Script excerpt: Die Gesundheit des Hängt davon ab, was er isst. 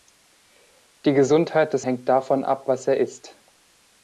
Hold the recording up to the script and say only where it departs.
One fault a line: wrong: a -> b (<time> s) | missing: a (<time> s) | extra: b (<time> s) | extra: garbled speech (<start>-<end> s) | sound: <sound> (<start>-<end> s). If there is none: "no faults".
no faults